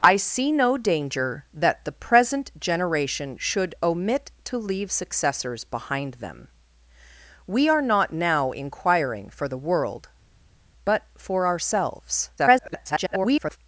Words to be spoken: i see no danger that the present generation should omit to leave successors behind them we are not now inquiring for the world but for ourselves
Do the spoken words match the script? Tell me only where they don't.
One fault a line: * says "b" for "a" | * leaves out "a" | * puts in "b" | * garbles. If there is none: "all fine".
* garbles